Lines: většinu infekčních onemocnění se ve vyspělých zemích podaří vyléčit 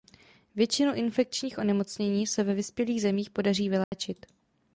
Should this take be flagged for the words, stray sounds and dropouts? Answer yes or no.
yes